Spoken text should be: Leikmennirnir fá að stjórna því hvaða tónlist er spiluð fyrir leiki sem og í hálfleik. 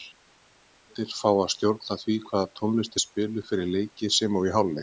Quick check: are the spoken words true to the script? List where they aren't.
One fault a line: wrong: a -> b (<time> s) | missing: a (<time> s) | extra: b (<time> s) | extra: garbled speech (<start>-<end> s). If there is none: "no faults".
no faults